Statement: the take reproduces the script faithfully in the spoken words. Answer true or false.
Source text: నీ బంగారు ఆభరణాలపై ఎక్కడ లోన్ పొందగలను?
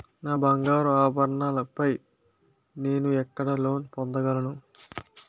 false